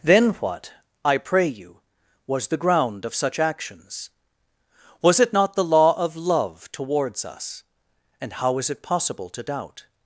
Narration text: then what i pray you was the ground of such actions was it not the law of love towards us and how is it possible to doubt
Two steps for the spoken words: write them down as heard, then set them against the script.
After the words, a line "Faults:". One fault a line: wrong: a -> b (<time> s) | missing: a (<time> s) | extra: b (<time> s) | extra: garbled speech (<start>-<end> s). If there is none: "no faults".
then what i pray you was the ground of such actions was it not the law of love towards us and how is it possible to doubt
Faults:
no faults